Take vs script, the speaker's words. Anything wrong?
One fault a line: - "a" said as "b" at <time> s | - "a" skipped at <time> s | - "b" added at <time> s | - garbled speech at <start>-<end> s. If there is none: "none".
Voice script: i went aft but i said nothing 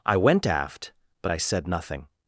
none